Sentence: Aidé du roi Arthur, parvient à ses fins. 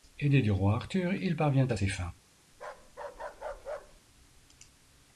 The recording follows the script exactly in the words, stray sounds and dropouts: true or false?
false